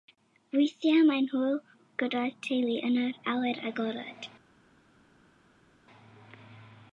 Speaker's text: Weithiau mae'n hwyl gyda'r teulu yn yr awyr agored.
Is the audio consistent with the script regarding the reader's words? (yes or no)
yes